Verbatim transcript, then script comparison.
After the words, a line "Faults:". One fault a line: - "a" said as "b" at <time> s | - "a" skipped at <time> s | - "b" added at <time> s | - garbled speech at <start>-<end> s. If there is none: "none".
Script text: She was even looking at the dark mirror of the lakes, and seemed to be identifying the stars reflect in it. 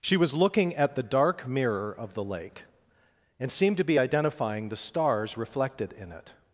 She was looking at the dark mirror of the lake, and seemed to be identifying the stars reflected in it.
Faults:
- "even" skipped at 0.3 s
- "lakes" said as "lake" at 2.2 s
- "reflect" said as "reflected" at 5.4 s